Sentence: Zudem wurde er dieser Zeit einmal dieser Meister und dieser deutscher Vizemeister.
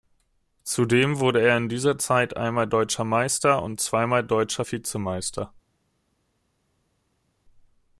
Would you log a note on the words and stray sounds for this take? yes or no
yes